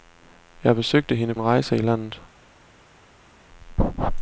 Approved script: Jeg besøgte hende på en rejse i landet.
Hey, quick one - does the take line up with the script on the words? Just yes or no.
no